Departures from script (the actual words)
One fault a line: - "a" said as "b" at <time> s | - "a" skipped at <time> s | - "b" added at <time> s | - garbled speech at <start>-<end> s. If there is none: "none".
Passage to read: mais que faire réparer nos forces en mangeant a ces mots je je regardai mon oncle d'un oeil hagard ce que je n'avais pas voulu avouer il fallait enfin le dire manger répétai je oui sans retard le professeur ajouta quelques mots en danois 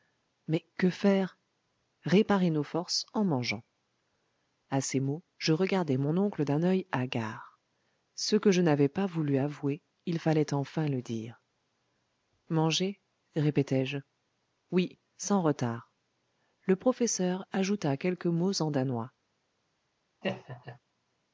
- "je" skipped at 5.5 s